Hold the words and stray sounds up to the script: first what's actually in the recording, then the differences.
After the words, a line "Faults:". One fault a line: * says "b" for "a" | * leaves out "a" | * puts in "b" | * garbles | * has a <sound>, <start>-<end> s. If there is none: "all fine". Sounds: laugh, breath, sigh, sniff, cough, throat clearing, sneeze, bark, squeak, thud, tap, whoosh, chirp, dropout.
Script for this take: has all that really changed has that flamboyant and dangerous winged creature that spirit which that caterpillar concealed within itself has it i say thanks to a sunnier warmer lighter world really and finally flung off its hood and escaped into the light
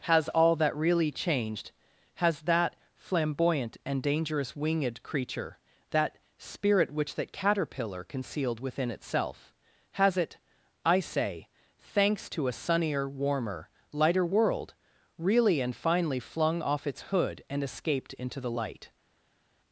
has all that really changed has that flamboyant and dangerous winged creature that spirit which that caterpillar concealed within itself has it i say thanks to a sunnier warmer lighter world really and finally flung off its hood and escaped into the light
Faults:
all fine